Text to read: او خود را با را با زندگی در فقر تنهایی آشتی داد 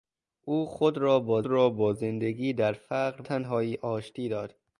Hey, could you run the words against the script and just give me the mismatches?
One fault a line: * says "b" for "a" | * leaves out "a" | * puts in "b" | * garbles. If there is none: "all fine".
all fine